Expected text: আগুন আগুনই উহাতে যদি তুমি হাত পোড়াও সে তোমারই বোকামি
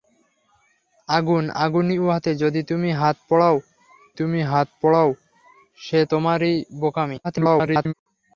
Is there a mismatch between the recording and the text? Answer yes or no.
yes